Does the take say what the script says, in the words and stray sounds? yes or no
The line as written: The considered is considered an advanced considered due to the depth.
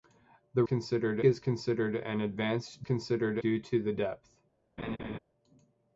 no